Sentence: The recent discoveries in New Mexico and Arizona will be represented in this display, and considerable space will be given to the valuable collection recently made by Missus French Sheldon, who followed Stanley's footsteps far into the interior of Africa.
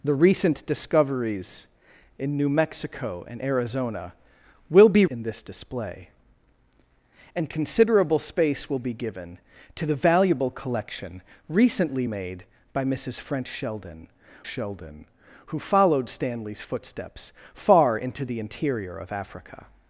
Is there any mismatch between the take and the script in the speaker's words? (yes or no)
yes